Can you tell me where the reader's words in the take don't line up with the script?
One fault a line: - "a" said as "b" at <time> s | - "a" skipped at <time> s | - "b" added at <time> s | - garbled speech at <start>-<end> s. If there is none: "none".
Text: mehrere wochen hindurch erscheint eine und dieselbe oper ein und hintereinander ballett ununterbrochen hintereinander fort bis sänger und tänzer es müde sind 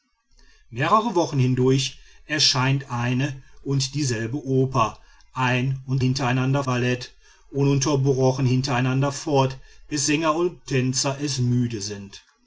none